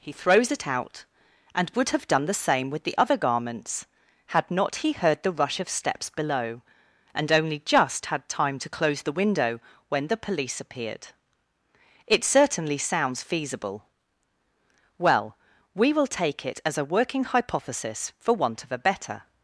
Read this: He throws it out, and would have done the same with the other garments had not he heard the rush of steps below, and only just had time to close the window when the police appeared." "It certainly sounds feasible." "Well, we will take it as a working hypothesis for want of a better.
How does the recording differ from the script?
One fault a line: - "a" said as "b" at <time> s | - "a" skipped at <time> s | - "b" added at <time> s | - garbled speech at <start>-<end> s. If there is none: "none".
none